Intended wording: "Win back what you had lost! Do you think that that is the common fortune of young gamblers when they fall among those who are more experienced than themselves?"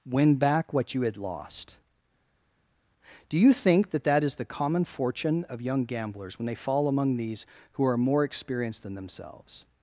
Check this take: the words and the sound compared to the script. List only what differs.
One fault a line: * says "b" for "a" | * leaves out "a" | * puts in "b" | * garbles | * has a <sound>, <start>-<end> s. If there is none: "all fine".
* says "these" for "those"